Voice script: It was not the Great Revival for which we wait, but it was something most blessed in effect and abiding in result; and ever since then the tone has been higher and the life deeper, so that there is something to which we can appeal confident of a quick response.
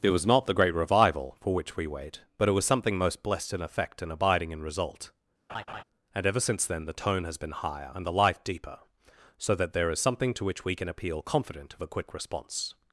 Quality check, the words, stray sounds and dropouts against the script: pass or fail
fail